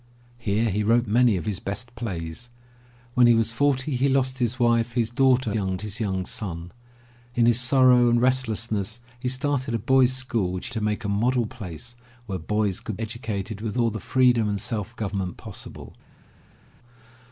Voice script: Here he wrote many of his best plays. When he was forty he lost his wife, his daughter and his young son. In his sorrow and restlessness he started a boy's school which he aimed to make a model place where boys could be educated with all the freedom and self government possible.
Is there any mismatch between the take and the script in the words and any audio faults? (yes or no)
yes